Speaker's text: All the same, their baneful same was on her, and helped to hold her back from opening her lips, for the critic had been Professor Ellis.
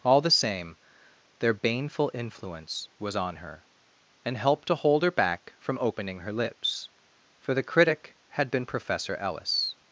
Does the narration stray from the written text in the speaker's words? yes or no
yes